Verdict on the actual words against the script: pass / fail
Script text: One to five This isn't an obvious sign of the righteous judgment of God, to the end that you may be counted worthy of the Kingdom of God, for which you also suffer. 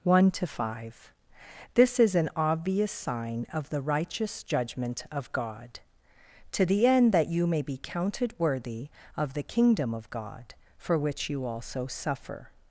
fail